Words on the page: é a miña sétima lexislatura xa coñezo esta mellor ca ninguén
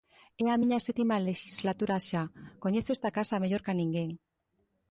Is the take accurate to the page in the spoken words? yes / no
no